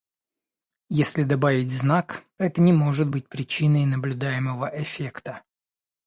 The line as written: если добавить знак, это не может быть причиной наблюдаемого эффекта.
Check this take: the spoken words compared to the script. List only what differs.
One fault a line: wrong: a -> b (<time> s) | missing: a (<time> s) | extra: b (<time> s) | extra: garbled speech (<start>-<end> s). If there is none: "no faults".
no faults